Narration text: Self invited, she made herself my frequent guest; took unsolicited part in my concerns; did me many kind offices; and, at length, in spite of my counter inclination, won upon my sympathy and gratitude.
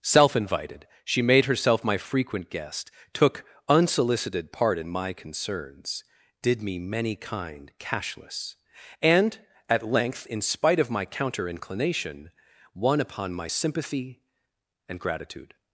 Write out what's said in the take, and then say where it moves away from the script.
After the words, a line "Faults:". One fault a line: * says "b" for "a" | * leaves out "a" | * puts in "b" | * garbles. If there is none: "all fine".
Self invited, she made herself my frequent guest; took unsolicited part in my concerns; did me many kind cashless; and, at length, in spite of my counter inclination, won upon my sympathy and gratitude.
Faults:
* says "cashless" for "offices"